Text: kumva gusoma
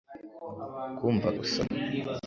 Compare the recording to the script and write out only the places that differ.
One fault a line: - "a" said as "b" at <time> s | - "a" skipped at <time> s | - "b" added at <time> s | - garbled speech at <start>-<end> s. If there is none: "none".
none